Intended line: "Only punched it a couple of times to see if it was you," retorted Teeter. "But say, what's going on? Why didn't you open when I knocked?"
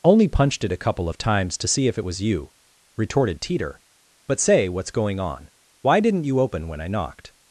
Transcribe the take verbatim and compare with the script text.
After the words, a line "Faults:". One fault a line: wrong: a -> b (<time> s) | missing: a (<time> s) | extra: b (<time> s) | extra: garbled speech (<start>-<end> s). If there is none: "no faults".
"Only punched it a couple of times to see if it was you," retorted Teeter. "But say, what's going on? Why didn't you open when I knocked?"
Faults:
no faults